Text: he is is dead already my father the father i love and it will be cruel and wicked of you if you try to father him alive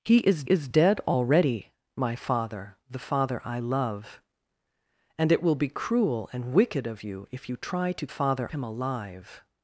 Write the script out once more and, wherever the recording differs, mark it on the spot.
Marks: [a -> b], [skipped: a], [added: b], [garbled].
he is is dead already my father the father i love and it will be cruel and wicked of you if you try to father him alive